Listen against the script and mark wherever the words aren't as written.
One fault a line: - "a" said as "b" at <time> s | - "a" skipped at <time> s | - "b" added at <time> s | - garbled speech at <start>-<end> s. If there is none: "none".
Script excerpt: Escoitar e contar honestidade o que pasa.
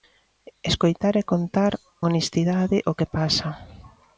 none